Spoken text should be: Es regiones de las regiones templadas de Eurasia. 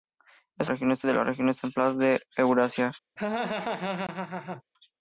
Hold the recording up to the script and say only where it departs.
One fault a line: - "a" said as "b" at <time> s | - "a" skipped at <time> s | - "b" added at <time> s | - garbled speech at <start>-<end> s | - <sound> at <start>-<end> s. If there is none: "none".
- laugh at 3.2-4.6 s